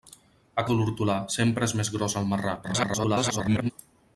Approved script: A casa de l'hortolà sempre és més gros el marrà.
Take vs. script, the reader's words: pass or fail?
fail